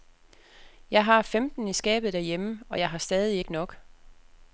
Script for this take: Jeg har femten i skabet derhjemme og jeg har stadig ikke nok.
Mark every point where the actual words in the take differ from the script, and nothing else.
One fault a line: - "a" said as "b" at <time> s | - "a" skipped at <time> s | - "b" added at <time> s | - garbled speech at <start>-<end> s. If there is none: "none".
none